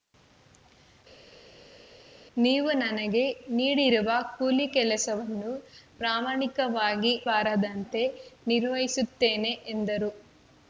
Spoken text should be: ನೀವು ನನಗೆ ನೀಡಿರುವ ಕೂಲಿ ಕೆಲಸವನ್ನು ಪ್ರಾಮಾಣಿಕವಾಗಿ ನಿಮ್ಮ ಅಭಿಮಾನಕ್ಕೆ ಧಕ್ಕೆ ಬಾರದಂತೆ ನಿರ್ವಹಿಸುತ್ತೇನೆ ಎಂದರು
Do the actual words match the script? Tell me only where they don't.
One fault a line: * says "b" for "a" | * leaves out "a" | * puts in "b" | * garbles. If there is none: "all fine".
* leaves out "ನಿಮ್ಮ ಅಭಿಮಾನಕ್ಕೆ ಧಕ್ಕೆ"